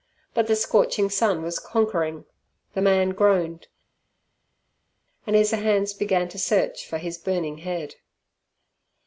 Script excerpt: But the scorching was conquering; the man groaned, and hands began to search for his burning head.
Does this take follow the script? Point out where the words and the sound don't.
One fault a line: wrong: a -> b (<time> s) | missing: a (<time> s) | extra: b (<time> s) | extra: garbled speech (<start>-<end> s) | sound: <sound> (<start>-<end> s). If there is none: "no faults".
extra: sun (1.1 s)
extra: his (5.3 s)